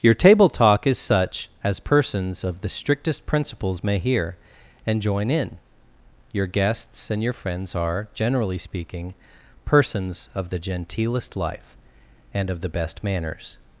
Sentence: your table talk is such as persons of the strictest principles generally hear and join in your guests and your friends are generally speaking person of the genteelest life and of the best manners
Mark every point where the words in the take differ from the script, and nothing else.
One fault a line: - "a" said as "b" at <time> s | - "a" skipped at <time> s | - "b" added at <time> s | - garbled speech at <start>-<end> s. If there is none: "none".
- "generally" said as "may" at 3.8 s
- "person" said as "persons" at 9.6 s